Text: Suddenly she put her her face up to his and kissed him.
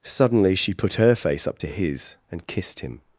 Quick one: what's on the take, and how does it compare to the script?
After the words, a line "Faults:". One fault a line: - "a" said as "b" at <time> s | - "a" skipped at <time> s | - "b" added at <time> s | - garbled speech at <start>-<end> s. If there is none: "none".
Suddenly she put her face up to his and kissed him.
Faults:
- "her" skipped at 1.1 s